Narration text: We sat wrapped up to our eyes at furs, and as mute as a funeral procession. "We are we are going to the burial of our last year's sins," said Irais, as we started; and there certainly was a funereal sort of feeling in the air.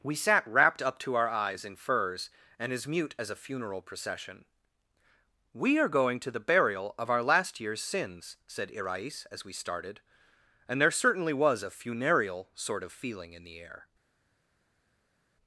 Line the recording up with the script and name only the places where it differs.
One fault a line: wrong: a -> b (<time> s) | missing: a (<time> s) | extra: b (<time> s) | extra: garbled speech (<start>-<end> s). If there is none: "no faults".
wrong: at -> in (1.6 s)
missing: we are (6.0 s)